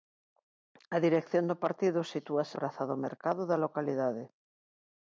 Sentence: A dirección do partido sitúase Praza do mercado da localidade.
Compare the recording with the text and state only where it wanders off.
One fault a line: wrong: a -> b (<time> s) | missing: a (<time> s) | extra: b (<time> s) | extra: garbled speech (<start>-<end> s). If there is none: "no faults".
no faults